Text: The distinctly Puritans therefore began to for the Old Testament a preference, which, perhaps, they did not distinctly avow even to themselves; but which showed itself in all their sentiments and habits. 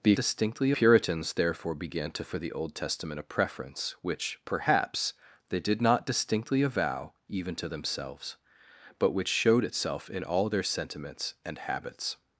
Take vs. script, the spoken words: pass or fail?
pass